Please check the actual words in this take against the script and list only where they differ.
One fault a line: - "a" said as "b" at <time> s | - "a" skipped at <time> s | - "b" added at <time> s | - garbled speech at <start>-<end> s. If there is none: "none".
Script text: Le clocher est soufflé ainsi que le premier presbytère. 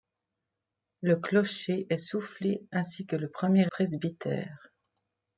none